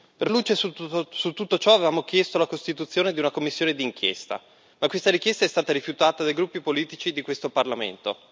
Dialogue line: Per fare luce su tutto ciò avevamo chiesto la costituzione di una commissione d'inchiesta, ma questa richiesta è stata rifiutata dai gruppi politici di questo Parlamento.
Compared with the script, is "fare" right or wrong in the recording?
wrong